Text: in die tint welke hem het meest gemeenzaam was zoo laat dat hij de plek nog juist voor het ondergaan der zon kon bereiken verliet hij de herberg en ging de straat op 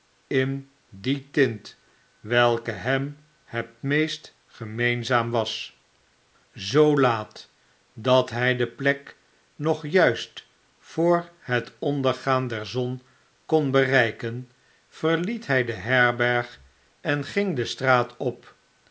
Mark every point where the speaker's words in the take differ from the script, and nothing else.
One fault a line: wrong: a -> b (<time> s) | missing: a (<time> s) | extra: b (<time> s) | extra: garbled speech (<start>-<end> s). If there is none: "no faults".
no faults